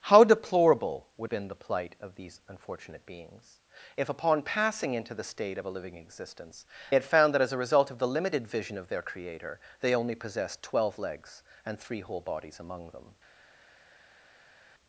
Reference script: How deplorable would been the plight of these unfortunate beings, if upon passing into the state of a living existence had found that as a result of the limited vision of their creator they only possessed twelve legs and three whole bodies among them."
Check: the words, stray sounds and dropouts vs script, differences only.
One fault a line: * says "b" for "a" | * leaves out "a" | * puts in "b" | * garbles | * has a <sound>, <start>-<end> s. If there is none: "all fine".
all fine